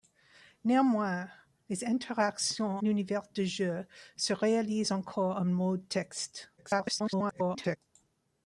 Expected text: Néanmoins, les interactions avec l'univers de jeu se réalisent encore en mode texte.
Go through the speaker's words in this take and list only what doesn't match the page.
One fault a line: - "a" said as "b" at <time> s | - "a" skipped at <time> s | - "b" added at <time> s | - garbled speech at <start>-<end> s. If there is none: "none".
- "avec" skipped at 2.8 s
- garbled speech at 6.6-7.8 s